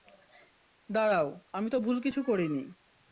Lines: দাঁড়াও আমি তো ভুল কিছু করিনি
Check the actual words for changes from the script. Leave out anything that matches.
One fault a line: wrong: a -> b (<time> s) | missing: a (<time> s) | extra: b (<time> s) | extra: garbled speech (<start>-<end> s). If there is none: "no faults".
no faults